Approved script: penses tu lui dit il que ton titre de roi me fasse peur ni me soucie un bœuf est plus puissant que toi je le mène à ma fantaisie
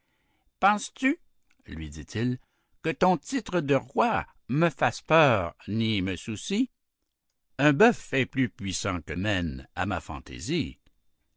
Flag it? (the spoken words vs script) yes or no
yes